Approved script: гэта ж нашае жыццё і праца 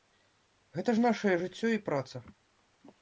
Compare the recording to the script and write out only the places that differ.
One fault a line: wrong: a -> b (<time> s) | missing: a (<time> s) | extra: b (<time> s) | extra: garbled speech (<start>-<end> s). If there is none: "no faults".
no faults